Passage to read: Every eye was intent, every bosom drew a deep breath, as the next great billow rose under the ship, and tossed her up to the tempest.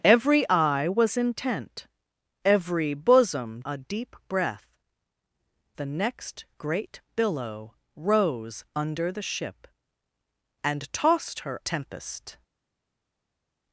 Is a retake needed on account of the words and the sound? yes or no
yes